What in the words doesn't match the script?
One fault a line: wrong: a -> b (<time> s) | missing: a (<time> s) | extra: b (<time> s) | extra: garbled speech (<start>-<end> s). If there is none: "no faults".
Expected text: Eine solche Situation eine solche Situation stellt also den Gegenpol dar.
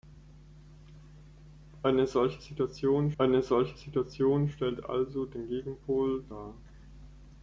no faults